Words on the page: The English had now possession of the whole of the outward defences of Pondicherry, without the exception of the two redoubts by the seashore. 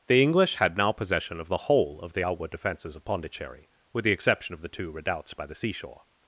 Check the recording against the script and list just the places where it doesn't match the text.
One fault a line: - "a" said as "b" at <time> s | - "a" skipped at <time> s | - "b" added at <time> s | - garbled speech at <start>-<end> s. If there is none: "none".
- "without" said as "with" at 3.9 s